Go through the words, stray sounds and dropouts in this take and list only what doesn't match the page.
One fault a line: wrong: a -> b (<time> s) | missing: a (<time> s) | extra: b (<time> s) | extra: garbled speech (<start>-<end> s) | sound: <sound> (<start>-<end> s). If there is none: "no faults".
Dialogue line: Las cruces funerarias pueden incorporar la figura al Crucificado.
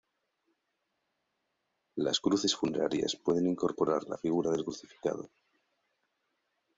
wrong: al -> del (4.5 s)